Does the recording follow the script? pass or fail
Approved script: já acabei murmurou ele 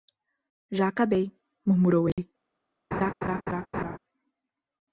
pass